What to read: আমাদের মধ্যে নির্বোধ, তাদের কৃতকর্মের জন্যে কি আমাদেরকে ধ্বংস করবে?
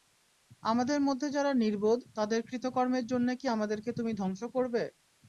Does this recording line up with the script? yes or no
no